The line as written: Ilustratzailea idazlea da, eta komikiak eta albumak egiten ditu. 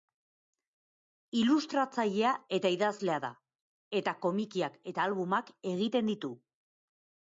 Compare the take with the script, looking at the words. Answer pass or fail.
fail